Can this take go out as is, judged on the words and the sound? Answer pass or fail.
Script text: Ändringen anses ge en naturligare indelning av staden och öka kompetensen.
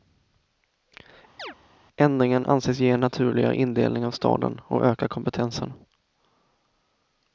fail